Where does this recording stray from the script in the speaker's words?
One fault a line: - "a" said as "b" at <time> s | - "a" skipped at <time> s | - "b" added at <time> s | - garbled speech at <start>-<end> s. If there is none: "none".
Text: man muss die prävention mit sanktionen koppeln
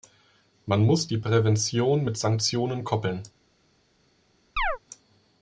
none